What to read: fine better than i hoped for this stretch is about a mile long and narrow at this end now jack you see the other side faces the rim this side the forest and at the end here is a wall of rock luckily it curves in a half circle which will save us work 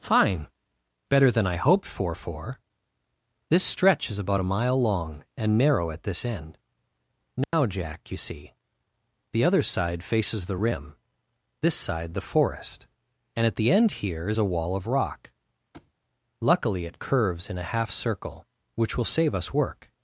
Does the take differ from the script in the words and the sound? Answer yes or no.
yes